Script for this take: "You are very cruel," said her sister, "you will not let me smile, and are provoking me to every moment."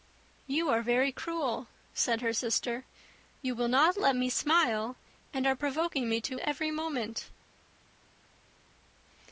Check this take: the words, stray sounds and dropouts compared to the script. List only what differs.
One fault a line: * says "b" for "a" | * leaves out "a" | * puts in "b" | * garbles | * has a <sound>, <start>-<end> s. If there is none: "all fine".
all fine